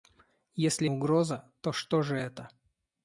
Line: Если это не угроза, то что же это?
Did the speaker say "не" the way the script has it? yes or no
no